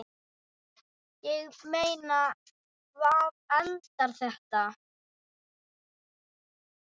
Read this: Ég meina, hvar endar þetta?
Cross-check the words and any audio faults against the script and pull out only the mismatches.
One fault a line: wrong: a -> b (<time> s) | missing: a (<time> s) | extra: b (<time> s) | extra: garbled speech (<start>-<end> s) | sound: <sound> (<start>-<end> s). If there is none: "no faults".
no faults